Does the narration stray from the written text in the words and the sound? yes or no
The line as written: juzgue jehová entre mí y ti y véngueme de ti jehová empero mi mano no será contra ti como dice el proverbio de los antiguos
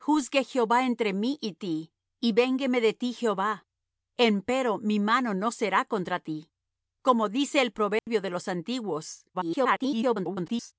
yes